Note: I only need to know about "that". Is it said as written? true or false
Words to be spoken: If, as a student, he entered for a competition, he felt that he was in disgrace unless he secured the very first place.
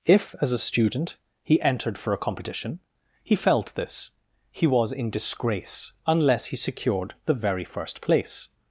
false